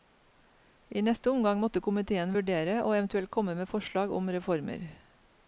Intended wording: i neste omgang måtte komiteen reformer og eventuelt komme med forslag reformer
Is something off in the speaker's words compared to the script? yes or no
yes